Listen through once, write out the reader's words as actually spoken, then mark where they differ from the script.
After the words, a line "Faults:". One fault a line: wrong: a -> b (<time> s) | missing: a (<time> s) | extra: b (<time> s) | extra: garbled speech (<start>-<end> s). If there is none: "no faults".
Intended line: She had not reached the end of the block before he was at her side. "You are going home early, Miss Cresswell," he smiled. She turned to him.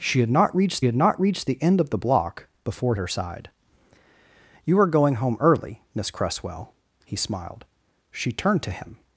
She had not reached had not reached the end of the block before her side. "You are going home early, Miss Cresswell," he smiled. She turned to him.
Faults:
extra: had not reached (0.8 s)
missing: he was at (2.9 s)